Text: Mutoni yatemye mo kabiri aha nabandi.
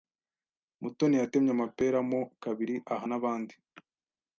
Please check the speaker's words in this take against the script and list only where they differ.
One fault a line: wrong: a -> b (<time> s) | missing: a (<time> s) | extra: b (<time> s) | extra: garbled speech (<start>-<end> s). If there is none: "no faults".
extra: amapera (1.6 s)